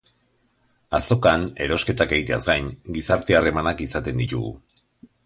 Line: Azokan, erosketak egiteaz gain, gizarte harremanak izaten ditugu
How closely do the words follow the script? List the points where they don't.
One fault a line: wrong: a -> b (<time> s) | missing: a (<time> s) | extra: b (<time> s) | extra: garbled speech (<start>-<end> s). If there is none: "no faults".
no faults